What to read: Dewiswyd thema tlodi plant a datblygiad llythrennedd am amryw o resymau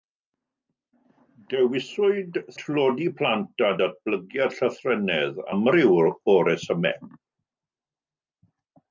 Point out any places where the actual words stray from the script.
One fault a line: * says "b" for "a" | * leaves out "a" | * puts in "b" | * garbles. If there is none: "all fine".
* leaves out "thema"
* leaves out "am"